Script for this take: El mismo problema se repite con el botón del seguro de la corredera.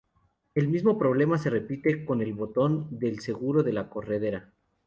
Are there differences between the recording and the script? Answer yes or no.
no